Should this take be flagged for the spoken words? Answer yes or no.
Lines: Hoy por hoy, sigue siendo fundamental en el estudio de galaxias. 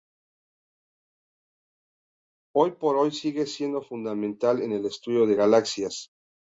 no